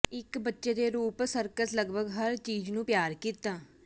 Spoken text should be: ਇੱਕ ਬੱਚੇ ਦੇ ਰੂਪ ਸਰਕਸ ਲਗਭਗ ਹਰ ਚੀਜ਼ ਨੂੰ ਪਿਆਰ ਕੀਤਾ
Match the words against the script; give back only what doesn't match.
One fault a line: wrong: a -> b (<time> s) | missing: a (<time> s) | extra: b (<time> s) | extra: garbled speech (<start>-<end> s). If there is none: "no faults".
no faults